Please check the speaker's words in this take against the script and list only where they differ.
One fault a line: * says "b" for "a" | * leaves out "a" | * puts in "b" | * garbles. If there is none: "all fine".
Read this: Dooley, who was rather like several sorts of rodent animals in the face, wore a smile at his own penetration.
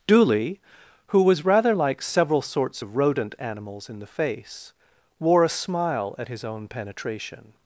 all fine